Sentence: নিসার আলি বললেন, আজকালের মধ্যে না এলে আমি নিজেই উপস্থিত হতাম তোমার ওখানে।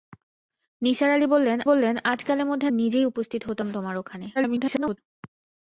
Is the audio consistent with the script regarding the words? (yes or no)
no